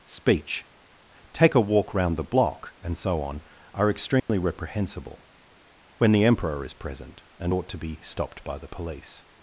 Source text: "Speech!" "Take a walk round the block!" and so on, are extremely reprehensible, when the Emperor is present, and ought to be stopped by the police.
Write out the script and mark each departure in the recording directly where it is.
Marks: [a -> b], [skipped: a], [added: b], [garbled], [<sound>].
"Speech!" "Take a walk round the block!" and so on, are extremely [dropout] reprehensible, when the Emperor is present, and ought to be stopped by the police.